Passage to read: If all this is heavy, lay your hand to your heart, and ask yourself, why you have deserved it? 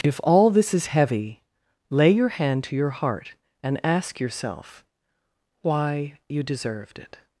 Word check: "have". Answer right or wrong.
wrong